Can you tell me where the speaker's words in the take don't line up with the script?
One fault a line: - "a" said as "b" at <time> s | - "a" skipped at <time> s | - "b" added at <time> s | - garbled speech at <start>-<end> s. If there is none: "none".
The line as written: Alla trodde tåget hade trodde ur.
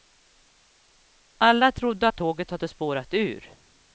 - "att" added at 2.0 s
- "trodde" said as "spårat" at 2.7 s